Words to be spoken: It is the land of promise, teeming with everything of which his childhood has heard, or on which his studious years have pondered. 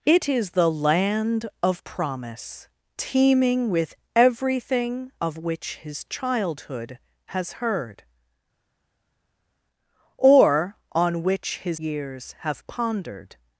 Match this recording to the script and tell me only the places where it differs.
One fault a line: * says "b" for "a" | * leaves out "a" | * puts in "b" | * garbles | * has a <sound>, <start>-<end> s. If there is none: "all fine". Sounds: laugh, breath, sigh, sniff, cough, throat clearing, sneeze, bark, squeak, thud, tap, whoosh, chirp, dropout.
* leaves out "studious"